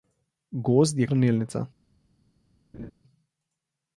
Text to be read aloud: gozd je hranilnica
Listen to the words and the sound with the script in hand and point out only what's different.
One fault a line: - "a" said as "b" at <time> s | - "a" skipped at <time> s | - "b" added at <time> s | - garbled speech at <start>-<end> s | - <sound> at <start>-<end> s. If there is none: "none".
- laugh at 2.7-2.9 s